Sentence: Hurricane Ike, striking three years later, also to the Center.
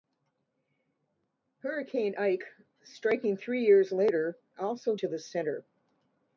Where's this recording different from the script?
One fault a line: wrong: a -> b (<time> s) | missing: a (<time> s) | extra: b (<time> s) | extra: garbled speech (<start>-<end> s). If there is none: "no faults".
no faults